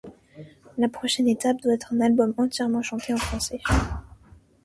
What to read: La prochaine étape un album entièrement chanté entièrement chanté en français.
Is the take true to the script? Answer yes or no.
no